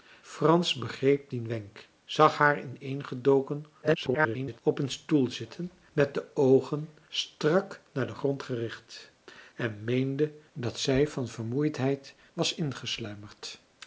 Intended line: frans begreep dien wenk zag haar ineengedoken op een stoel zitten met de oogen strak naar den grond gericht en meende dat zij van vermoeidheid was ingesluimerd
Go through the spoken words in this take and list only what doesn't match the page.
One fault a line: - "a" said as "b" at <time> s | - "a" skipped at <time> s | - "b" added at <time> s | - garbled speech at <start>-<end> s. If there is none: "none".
- garbled speech at 3.8-4.6 s